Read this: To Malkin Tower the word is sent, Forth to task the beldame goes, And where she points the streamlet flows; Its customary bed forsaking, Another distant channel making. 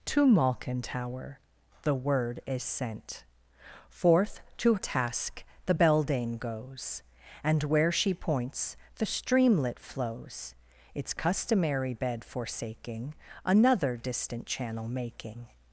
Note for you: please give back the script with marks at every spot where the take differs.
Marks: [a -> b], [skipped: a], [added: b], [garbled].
To Malkin Tower the word is sent, Forth to task the beldame goes, And where she points the streamlet flows; Its customary bed forsaking, Another distant channel making.